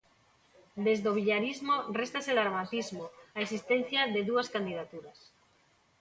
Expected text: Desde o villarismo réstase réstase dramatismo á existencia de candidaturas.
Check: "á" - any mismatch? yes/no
no